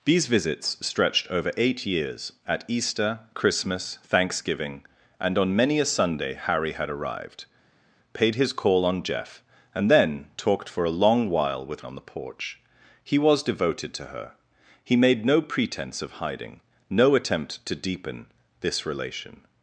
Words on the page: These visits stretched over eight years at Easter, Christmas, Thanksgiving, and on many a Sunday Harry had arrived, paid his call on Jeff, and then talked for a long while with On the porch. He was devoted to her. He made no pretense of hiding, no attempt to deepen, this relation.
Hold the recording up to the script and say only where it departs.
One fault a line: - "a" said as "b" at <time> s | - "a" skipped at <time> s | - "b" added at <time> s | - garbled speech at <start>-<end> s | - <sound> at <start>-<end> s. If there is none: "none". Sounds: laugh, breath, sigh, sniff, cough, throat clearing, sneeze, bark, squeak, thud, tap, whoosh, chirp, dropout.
none